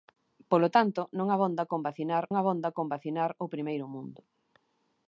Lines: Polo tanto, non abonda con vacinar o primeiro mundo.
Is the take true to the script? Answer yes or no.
no